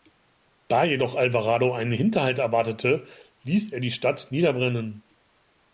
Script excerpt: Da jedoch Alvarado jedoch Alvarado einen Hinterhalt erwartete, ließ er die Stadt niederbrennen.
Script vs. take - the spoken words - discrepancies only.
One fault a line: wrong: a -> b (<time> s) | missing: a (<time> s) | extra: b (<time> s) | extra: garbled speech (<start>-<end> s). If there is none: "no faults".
missing: jedoch Alvarado (1.7 s)